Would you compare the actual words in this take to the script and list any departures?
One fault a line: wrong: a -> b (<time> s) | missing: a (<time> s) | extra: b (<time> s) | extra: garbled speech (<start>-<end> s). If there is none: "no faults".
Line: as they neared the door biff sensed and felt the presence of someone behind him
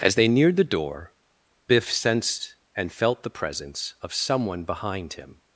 no faults